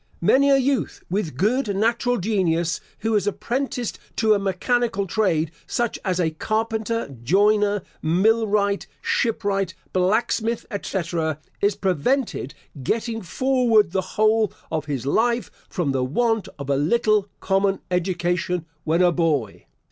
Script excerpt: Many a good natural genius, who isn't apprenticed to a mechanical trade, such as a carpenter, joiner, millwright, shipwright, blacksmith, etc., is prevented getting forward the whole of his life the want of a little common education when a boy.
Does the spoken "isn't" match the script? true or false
false